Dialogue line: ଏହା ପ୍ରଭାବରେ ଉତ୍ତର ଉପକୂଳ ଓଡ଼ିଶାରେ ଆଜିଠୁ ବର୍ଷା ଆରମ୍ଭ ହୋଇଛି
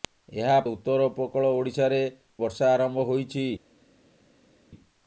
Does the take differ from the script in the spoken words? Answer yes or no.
yes